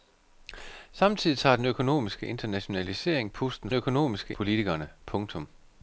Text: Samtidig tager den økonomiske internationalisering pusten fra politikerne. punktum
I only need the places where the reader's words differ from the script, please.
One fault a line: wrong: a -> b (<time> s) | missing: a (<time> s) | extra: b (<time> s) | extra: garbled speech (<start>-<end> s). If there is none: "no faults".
wrong: fra -> økonomiske (3.7 s)